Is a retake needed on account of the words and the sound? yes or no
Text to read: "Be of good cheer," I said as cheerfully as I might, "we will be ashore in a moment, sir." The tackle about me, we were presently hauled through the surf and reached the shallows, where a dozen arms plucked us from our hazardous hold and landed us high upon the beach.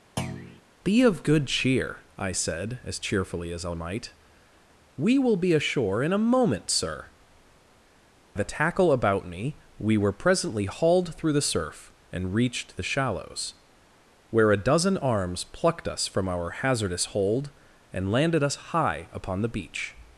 yes